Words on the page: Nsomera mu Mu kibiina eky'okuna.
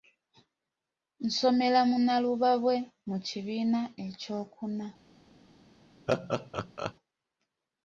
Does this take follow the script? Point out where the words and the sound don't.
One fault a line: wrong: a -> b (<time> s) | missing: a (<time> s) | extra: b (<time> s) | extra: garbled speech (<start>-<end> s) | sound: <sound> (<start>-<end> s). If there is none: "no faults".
extra: Nnalubabwe (2.0 s)
sound: laugh (6.1-6.9 s)